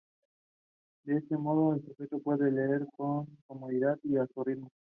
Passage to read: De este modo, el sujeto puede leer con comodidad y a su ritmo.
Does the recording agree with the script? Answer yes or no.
yes